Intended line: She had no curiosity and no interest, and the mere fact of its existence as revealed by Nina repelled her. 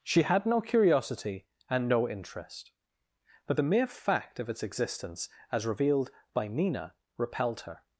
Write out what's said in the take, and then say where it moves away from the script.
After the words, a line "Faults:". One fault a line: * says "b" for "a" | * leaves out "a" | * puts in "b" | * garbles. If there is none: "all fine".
She had no curiosity and no interest, but the mere fact of its existence as revealed by Nina repelled her.
Faults:
* says "but" for "and"